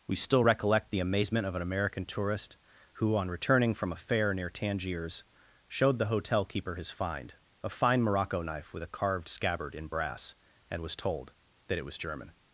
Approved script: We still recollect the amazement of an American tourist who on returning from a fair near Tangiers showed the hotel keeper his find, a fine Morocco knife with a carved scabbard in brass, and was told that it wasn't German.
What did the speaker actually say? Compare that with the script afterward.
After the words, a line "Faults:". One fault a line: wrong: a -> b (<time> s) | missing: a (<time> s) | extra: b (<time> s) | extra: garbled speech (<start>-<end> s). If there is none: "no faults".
We still recollect the amazement of an American tourist who on returning from a fair near Tangiers showed the hotel keeper his find, a fine Morocco knife with a carved scabbard in brass, and was told that it was German.
Faults:
wrong: wasn't -> was (11.8 s)